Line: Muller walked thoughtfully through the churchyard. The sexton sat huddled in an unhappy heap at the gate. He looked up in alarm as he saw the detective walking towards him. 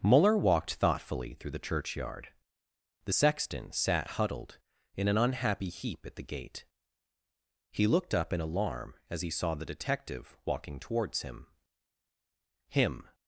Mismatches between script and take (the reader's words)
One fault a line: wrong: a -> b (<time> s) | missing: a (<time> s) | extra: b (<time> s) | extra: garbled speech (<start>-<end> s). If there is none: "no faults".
extra: him (12.7 s)